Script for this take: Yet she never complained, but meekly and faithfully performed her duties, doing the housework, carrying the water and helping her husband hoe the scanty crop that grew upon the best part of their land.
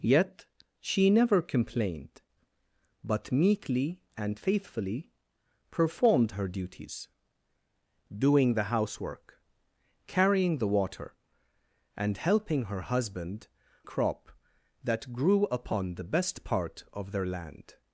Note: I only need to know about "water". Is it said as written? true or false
true